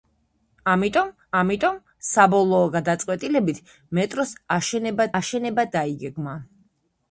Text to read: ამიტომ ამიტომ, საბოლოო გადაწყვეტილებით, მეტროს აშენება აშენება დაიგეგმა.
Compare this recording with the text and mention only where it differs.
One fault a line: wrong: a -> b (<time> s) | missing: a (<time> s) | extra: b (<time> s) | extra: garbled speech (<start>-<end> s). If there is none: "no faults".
no faults